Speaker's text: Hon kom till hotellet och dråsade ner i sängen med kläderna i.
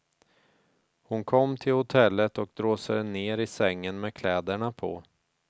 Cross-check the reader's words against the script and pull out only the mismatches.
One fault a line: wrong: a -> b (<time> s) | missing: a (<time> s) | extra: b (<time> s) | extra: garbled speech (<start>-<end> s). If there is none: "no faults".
wrong: i -> på (4.7 s)